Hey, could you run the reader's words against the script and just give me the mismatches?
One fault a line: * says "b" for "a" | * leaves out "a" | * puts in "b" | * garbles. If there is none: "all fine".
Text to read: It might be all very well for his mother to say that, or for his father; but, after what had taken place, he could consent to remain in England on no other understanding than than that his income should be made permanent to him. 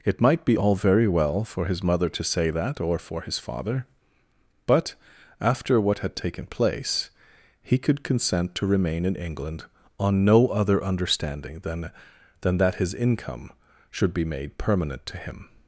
all fine